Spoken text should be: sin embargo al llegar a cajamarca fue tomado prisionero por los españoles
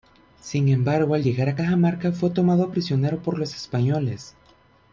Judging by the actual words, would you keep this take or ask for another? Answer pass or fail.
pass